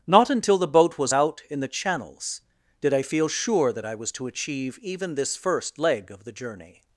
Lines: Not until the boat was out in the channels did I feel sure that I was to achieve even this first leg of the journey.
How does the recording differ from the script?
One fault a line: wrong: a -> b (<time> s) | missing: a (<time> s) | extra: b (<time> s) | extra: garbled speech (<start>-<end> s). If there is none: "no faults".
no faults